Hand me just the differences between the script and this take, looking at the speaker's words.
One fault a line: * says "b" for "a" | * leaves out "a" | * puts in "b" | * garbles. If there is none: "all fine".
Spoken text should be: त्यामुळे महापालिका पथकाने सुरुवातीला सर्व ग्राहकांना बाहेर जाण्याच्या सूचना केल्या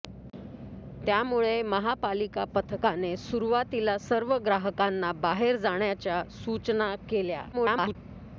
* garbles